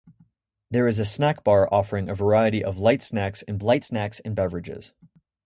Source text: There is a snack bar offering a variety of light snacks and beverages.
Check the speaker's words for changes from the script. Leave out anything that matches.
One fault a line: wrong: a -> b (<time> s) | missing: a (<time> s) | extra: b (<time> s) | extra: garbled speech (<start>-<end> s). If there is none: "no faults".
extra: light snacks and (3.6 s)